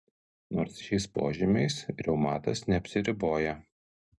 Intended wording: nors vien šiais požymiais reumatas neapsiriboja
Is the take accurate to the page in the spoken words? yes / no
no